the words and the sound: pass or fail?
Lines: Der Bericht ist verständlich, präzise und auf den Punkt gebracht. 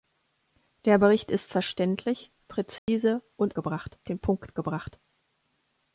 fail